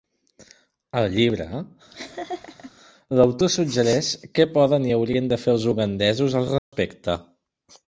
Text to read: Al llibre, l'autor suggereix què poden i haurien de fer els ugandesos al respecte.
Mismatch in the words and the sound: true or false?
true